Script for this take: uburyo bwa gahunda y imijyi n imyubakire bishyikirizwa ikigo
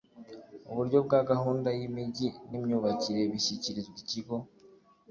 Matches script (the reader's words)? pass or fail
pass